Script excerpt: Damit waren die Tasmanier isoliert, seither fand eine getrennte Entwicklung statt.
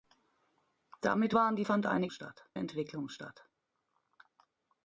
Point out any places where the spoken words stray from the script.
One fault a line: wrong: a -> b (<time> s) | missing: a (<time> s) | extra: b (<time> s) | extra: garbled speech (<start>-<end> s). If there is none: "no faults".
missing: Tasmanier isoliert seither (1.7 s)
wrong: getrennte -> statt (2.1 s)